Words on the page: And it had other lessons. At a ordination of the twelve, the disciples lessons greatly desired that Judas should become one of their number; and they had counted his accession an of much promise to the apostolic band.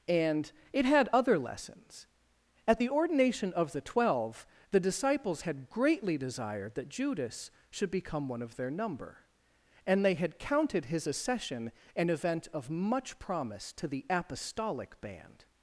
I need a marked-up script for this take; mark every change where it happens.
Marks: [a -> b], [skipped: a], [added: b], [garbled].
And it had other lessons. At [a -> the] ordination of the twelve, the disciples [lessons -> had] greatly desired that Judas should become one of their number; and they had counted his accession an [added: event] of much promise to the apostolic band.